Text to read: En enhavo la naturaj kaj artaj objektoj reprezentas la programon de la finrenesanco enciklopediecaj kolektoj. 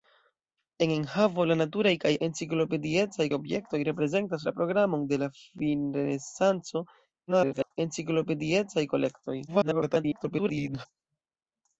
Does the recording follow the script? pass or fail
fail